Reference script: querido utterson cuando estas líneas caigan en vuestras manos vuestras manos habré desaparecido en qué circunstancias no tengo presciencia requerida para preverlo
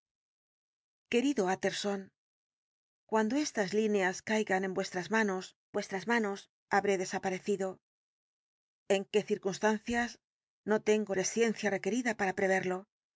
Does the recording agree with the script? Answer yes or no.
yes